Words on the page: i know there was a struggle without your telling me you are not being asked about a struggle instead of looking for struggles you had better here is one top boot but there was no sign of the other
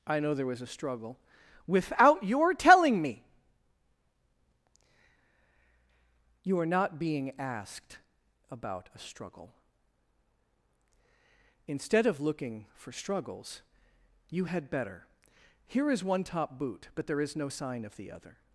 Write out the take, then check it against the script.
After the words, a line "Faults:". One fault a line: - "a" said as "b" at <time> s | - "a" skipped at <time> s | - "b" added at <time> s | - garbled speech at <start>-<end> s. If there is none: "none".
i know there was a struggle without your telling me you are not being asked about a struggle instead of looking for struggles you had better here is one top boot but there is no sign of the other
Faults:
- "was" said as "is" at 17.2 s